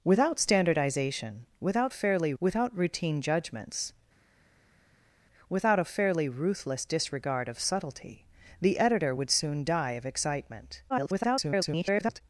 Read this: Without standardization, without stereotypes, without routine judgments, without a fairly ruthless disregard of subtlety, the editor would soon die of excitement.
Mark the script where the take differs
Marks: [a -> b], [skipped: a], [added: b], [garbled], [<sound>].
Without standardization, without [stereotypes, -> fairly] without routine judgments, without a fairly ruthless disregard of subtlety, the editor would soon die of excitement. [garbled]